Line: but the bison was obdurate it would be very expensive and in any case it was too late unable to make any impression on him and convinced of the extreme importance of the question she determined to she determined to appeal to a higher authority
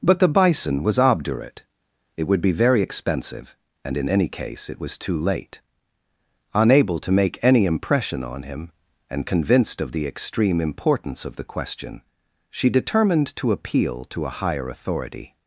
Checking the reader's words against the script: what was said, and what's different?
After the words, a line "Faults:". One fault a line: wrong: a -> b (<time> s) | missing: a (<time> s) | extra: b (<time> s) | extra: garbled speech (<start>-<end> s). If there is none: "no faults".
but the bison was obdurate it would be very expensive and in any case it was too late unable to make any impression on him and convinced of the extreme importance of the question she determined to appeal to a higher authority
Faults:
missing: she determined to (13.5 s)